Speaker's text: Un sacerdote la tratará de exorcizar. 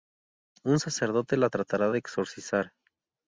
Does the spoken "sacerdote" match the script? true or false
true